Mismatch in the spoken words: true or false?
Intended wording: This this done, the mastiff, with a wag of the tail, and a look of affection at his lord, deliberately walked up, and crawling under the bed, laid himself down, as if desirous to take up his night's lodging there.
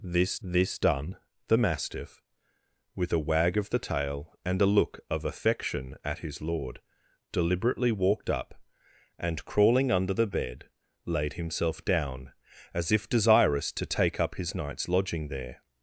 false